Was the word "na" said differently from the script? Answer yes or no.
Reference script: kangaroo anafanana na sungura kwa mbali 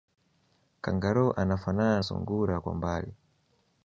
yes